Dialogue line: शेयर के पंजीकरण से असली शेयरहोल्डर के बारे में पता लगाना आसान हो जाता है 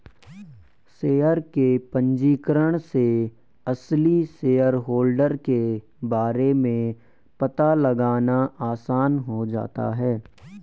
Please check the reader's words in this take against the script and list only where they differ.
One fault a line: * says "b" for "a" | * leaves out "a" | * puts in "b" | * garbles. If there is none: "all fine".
all fine